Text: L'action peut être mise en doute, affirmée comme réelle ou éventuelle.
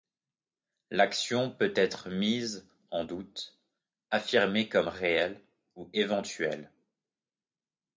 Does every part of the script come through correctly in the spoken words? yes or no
yes